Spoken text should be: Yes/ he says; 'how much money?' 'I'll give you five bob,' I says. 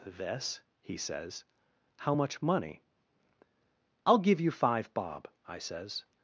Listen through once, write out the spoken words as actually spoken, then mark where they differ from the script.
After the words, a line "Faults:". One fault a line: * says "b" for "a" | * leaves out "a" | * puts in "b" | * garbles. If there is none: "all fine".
This/ he says; 'how much money?' 'I'll give you five bob,' I says.
Faults:
* says "This" for "Yes"